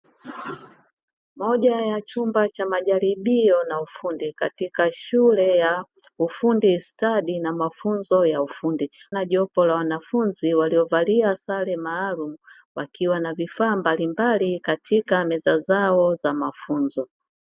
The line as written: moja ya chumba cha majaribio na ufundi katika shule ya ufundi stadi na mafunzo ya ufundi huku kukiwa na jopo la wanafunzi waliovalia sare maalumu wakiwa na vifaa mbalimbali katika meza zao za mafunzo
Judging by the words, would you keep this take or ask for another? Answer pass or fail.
fail